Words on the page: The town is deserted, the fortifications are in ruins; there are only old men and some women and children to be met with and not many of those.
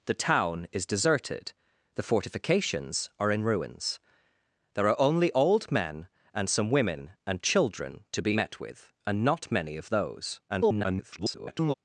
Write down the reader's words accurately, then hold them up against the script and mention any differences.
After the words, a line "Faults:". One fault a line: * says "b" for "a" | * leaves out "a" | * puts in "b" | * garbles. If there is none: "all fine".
The town is deserted, the fortifications are in ruins; there are only old men and some women and children to be met with and not many of those. [garbled]
Faults:
* garbles